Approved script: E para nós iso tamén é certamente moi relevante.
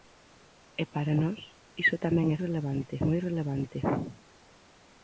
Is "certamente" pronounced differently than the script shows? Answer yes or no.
yes